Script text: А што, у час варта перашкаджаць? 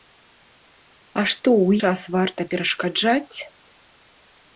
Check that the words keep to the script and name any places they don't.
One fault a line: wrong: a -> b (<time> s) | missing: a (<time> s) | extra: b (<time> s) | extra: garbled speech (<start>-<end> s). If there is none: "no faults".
no faults